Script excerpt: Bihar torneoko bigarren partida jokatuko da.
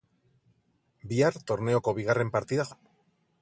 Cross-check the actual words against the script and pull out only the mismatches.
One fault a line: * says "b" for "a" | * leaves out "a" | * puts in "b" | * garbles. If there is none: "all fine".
* leaves out "jokatuko"